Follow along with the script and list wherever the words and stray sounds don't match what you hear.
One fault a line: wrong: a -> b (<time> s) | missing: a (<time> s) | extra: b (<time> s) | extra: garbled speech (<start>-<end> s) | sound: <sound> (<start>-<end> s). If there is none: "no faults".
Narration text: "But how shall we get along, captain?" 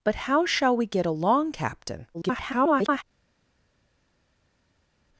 extra: garbled speech (2.1-3.0 s)